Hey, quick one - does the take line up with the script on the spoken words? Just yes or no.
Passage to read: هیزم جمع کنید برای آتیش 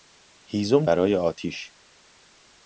no